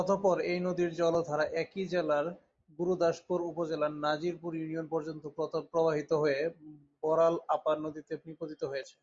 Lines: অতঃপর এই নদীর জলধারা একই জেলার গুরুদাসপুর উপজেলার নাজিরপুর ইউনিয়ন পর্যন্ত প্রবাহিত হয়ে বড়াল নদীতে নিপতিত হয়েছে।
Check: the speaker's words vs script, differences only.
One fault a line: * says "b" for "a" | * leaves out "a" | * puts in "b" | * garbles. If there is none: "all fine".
* puts in "আপার"